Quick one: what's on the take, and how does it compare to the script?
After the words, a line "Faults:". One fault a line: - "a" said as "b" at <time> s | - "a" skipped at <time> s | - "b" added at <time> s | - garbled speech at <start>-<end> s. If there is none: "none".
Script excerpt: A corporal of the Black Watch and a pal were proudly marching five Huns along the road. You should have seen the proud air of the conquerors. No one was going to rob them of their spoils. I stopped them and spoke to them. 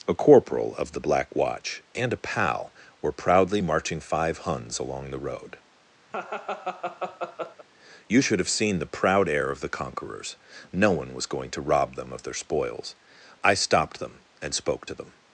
A corporal of the Black Watch and a pal were proudly marching five Huns along the road. You should have seen the proud air of the conquerors. No one was going to rob them of their spoils. I stopped them and spoke to them.
Faults:
none